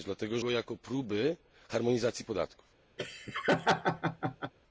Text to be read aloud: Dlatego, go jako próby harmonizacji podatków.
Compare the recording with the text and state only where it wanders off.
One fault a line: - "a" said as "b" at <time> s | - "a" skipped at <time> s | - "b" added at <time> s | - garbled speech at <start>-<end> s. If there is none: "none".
none